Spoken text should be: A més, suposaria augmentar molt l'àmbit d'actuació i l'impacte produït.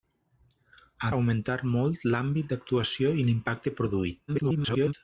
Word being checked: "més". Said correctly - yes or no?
no